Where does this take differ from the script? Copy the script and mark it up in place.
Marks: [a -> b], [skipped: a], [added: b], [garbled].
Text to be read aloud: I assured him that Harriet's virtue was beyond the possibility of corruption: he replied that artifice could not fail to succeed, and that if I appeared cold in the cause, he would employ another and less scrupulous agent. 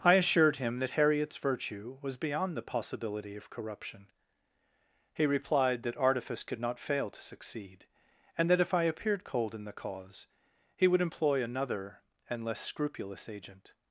I assured him that Harriet's virtue was beyond the possibility of corruption: he replied that artifice could not fail to succeed, and that if I appeared cold in the cause, he would employ another and less scrupulous agent.